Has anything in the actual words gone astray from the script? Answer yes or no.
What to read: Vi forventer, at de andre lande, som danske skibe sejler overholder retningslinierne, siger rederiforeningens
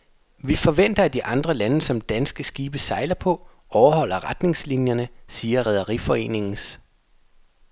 yes